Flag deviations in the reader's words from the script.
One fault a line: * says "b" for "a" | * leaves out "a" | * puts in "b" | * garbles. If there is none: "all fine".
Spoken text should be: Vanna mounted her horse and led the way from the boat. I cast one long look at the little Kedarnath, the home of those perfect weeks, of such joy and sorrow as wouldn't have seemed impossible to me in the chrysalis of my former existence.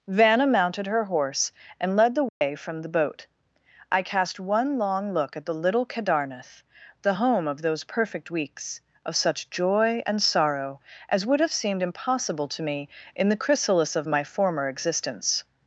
* says "would" for "wouldn't"